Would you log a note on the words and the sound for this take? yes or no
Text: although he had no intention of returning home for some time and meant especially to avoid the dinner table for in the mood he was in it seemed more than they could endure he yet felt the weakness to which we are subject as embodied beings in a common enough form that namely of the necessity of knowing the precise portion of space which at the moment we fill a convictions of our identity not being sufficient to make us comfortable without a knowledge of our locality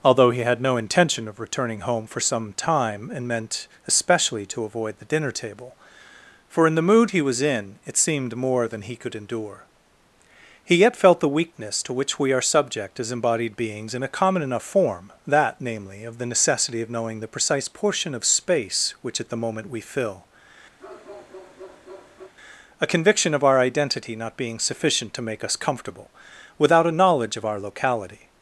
yes